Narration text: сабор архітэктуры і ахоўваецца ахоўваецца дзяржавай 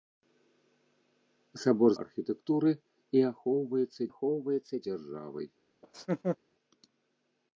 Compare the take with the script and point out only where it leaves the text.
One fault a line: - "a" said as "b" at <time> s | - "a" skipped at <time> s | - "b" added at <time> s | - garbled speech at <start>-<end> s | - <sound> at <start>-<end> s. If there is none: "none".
- laugh at 5.8-6.4 s